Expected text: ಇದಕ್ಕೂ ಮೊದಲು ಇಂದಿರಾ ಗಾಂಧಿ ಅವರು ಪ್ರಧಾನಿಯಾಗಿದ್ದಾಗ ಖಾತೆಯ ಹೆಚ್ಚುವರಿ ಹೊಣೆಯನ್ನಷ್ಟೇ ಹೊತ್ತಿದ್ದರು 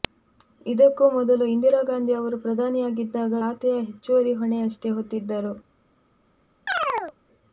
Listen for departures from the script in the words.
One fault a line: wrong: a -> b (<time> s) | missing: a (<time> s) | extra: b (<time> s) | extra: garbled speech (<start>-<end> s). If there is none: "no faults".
no faults